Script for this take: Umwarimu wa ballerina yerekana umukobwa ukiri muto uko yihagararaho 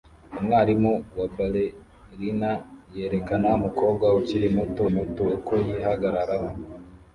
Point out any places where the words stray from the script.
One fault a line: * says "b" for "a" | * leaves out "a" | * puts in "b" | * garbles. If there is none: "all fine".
* puts in "muto"